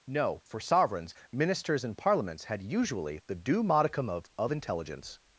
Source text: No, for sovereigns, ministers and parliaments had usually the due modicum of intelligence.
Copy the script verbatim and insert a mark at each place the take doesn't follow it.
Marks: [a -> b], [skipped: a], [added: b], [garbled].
No, for sovereigns, ministers and parliaments had usually the due modicum of [added: of] intelligence.